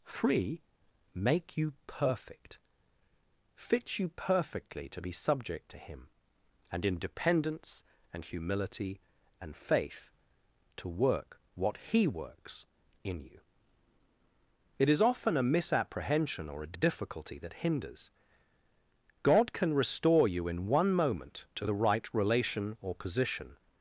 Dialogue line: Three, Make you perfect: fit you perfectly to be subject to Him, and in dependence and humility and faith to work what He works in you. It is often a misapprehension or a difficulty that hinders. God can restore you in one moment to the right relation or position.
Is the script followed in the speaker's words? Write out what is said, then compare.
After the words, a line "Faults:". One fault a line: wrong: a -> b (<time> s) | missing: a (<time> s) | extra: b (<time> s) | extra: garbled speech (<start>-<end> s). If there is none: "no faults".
Three, Make you perfect: fit you perfectly to be subject to Him, and in dependence and humility and faith to work what He works in you. It is often a misapprehension or a a difficulty that hinders. God can restore you in one moment to the right relation or position.
Faults:
extra: a (16.7 s)